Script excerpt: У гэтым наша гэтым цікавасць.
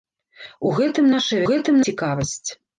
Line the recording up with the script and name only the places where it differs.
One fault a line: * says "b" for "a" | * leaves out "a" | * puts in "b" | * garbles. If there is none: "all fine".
all fine